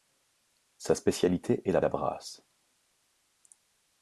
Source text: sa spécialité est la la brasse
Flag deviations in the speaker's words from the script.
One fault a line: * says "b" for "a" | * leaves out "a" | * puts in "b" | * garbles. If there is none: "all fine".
all fine